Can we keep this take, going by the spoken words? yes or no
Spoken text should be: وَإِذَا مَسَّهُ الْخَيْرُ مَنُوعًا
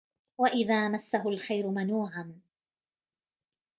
yes